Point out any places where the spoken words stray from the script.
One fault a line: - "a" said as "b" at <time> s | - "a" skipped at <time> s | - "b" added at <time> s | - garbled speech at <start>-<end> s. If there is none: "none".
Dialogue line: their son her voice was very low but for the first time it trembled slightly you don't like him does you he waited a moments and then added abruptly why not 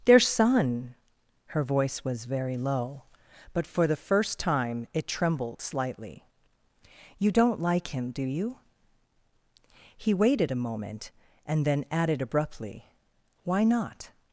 - "does" said as "do" at 8.1 s
- "moments" said as "moment" at 10.6 s